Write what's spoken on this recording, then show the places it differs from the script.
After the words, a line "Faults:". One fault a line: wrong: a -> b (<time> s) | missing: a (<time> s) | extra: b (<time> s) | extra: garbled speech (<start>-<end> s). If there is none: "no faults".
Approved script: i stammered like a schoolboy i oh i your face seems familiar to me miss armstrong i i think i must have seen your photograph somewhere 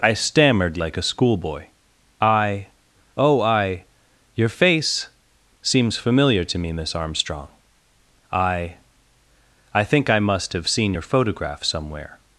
i stammered like a schoolboy i oh i your face seems familiar to me miss armstrong i i think i must have seen your photograph somewhere
Faults:
no faults